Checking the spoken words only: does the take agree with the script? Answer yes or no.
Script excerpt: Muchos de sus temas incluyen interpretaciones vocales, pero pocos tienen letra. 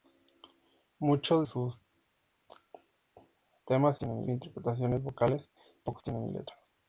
no